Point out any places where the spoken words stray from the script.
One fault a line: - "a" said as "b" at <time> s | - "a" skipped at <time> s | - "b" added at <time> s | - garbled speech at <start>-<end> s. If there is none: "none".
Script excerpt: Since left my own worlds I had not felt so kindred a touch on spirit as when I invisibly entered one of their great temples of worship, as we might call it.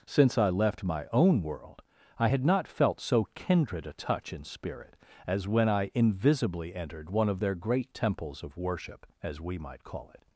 - "I" added at 0.4 s
- "worlds" said as "world" at 1.4 s
- "on" said as "in" at 4.3 s